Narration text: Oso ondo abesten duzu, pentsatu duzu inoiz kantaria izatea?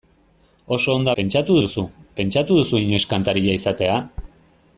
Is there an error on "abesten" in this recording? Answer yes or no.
yes